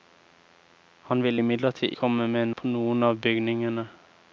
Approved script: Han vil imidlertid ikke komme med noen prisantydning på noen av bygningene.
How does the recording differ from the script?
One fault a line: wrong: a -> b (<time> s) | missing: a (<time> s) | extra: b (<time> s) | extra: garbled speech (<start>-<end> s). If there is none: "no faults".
missing: ikke (1.9 s)
missing: noen prisantydning (2.5 s)